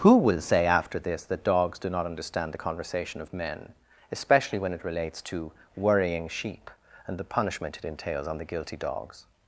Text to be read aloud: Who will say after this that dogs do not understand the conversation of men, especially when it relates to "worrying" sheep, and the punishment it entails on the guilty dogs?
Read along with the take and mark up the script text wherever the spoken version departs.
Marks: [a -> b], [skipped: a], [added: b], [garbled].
Who will say after this that dogs do not understand the conversation of men, especially when it relates to "worrying" sheep, and the punishment it entails on the guilty dogs?